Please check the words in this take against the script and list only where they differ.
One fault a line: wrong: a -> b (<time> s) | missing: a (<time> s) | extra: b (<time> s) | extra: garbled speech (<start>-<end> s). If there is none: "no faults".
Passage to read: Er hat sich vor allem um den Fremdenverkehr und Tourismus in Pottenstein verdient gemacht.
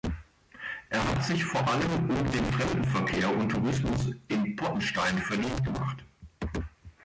no faults